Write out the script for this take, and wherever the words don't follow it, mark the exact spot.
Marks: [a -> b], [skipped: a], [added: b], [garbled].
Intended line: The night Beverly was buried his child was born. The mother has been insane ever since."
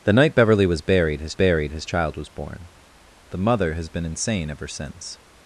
The night Beverly was buried his [added: buried his] child was born. The mother has been insane ever since."